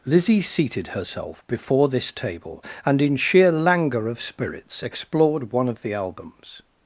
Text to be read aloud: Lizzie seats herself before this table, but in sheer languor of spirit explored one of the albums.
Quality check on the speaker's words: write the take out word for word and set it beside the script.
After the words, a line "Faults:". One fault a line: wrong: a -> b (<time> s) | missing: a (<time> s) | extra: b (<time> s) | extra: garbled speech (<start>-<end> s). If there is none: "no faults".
Lizzie seated herself before this table, and in sheer languor of spirits explored one of the albums.
Faults:
wrong: seats -> seated (0.4 s)
wrong: but -> and (2.8 s)
wrong: spirit -> spirits (4.2 s)